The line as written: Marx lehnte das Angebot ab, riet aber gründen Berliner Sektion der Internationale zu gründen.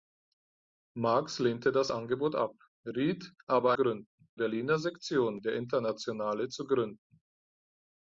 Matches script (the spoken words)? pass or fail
pass